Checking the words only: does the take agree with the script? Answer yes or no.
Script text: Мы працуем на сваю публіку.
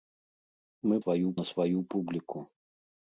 no